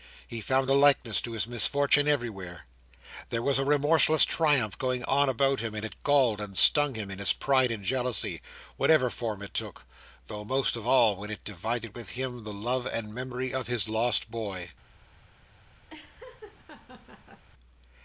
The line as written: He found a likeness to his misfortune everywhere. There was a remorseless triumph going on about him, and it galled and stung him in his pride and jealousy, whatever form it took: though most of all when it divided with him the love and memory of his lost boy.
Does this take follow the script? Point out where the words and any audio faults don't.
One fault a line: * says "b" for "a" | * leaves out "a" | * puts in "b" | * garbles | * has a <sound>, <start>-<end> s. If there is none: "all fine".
* has a laugh, 15.9-17.4 s